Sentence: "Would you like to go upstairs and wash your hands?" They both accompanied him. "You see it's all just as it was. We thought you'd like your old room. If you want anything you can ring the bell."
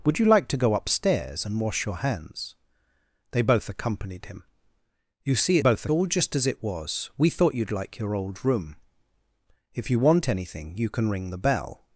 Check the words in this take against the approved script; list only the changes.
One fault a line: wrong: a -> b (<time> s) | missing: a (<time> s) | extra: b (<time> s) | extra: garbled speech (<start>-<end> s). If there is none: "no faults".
wrong: it's -> both (5.6 s)